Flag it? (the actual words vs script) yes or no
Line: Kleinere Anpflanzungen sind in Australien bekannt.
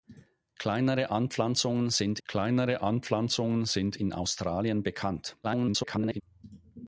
yes